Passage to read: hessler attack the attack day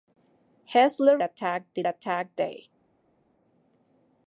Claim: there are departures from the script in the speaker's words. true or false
false